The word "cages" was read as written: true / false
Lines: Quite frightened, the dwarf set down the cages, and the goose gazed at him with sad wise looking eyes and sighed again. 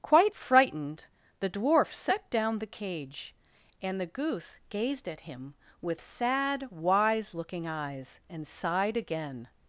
false